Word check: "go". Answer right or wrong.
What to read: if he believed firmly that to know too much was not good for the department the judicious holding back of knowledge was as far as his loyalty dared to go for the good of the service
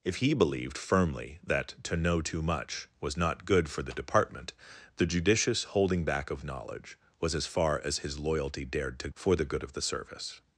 wrong